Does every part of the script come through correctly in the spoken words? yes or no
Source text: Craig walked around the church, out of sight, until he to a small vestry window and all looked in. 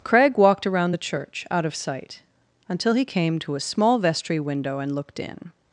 no